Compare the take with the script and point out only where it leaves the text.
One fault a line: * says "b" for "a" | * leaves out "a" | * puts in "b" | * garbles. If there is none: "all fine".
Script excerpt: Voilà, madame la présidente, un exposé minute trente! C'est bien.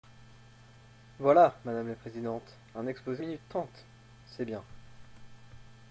all fine